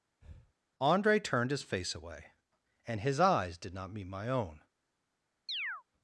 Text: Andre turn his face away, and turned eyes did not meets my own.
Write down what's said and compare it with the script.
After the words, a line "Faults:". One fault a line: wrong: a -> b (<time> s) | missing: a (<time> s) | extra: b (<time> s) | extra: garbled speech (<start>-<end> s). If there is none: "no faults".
Andre turned his face away, and his eyes did not meet my own.
Faults:
wrong: turn -> turned (1.2 s)
wrong: turned -> his (3.0 s)
wrong: meets -> meet (3.9 s)